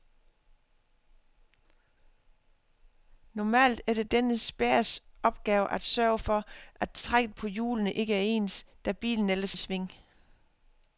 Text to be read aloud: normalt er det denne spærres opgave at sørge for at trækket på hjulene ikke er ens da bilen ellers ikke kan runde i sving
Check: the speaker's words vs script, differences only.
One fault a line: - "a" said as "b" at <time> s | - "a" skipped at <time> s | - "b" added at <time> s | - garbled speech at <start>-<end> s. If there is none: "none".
- "ikke kan runde" skipped at 9.6 s